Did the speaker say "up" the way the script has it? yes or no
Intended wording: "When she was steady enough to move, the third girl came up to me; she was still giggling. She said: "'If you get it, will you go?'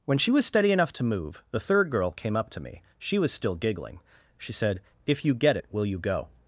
yes